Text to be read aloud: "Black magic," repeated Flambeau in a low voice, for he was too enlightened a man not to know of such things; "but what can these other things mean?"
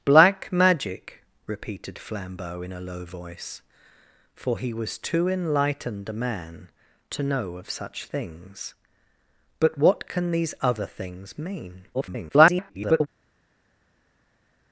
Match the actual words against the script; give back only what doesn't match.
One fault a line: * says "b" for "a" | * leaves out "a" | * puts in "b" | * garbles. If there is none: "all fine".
* leaves out "not"
* garbles